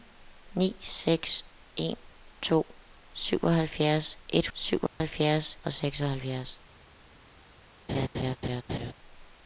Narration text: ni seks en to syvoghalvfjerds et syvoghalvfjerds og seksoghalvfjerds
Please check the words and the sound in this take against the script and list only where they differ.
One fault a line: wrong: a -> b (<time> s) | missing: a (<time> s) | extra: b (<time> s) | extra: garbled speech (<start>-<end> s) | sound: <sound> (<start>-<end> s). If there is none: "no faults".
sound: dropout (4.9-5.0 s)
sound: laugh (7.9-8.9 s)